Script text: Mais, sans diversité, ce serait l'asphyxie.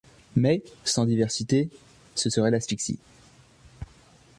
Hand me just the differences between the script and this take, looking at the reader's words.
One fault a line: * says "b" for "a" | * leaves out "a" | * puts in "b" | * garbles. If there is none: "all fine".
all fine